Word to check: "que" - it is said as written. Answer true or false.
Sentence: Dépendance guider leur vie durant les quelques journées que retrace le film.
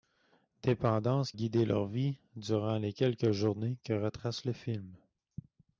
true